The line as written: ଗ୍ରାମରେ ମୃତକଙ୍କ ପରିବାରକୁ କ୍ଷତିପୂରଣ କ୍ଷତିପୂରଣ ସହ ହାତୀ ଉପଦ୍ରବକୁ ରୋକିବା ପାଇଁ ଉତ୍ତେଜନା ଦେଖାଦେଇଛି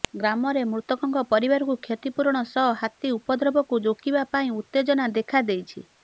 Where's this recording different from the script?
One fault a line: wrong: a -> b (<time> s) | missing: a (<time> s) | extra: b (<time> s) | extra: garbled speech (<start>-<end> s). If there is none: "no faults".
missing: କ୍ଷତିପୂରଣ (2.4 s)